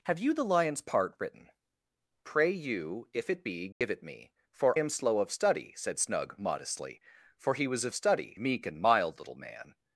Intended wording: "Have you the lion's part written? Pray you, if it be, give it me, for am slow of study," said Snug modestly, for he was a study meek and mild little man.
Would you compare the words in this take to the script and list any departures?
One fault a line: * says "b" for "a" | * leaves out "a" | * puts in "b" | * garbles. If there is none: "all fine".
all fine